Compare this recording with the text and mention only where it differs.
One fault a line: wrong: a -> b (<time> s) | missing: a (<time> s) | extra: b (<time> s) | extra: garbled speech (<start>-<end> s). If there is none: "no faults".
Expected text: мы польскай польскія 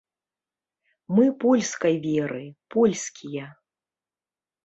extra: веры (2.1 s)